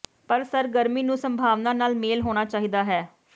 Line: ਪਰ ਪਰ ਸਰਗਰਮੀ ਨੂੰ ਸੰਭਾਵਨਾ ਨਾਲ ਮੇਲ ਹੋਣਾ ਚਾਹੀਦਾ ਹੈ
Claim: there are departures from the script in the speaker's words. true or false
true